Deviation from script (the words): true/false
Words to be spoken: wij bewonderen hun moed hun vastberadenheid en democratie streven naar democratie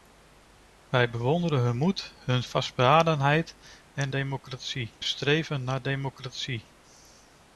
false